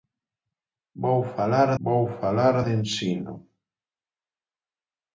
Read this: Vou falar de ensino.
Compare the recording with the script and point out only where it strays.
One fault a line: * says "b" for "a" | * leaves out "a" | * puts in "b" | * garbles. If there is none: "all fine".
* puts in "vou falar"